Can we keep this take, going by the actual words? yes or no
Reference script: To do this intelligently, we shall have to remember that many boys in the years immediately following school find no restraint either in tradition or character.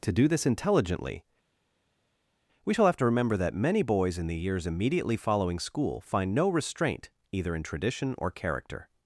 yes